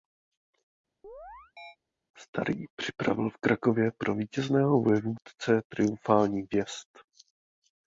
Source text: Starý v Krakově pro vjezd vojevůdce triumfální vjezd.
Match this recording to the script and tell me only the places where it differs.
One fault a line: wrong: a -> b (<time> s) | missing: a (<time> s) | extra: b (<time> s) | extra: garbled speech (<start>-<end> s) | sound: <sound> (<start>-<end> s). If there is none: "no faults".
sound: chirp (1.0-1.8 s)
extra: připravil (2.8 s)
wrong: vjezd -> vítězného (4.1 s)